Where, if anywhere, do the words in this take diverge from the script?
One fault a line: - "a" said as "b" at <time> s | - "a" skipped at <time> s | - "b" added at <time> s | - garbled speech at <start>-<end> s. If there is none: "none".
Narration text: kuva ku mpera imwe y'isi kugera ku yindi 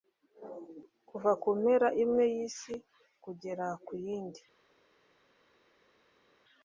none